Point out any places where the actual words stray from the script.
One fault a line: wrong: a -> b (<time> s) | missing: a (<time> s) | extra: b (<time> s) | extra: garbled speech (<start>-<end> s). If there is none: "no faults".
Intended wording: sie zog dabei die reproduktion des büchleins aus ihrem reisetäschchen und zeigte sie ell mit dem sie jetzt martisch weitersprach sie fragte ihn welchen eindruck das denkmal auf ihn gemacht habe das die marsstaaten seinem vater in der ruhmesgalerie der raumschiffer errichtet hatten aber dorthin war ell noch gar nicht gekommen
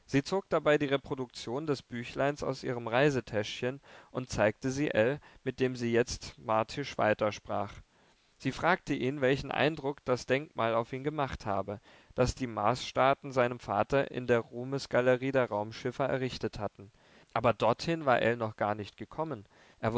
no faults